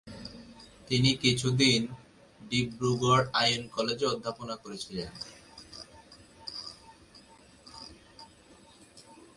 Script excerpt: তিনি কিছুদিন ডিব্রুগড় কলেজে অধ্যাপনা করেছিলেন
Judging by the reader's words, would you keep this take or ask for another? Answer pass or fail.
fail